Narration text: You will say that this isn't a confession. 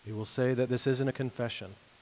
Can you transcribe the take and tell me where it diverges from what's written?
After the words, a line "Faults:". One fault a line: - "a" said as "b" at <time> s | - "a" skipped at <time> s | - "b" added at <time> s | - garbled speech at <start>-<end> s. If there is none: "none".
You will say that this isn't a confession.
Faults:
none